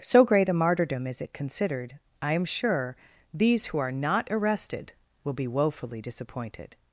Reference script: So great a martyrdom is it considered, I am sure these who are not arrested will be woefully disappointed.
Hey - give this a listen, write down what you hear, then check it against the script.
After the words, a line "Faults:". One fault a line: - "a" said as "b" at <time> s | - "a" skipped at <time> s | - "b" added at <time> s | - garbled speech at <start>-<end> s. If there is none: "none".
So great a martyrdom is it considered, I am sure these who are not arrested will be woefully disappointed.
Faults:
none